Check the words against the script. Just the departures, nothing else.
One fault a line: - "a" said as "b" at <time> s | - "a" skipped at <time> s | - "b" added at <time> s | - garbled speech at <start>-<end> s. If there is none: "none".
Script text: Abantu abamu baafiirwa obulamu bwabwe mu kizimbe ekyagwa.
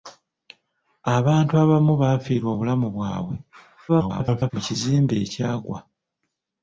- garbled speech at 3.9-4.5 s